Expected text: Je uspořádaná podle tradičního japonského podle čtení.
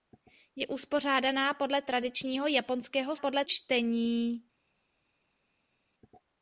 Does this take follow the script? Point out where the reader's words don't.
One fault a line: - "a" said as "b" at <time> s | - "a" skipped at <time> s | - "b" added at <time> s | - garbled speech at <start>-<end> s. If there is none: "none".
none